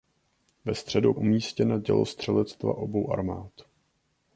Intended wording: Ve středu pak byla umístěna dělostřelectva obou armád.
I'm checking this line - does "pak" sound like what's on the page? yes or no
no